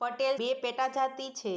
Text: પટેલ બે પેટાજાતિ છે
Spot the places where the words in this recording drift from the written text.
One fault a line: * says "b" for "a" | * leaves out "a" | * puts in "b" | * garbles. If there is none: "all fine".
all fine